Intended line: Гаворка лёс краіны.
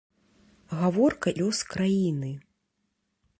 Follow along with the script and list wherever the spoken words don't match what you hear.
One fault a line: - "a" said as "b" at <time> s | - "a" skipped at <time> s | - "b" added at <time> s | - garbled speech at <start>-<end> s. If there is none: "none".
none